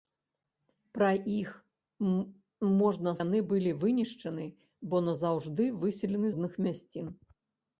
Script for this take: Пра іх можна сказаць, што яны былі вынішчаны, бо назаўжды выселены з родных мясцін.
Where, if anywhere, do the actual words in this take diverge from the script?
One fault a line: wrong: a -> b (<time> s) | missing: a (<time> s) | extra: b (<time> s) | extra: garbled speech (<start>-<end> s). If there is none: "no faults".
missing: сказаць што (3.1 s)
missing: з (6.3 s)